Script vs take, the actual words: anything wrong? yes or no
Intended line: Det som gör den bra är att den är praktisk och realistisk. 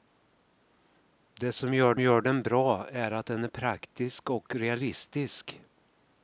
yes